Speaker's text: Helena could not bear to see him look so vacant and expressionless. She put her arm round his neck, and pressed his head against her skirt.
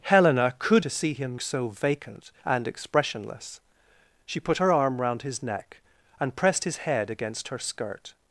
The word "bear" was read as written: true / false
false